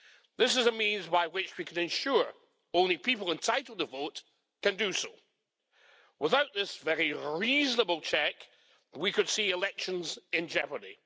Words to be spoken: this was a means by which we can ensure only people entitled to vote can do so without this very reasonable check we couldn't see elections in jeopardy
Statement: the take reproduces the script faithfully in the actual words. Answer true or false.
false